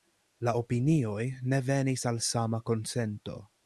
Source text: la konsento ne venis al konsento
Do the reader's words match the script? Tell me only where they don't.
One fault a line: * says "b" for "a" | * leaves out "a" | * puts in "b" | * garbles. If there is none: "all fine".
* says "opinioj" for "konsento"
* puts in "sama"